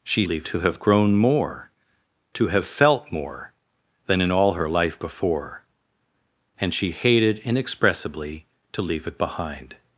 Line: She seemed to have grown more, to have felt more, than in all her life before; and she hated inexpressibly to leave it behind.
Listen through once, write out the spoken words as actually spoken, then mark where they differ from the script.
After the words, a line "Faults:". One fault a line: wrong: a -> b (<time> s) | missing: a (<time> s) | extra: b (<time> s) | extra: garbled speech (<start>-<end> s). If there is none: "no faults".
She leave to have grown more, to have felt more, than in all her life before; and she hated inexpressibly to leave it behind.
Faults:
wrong: seemed -> leave (0.2 s)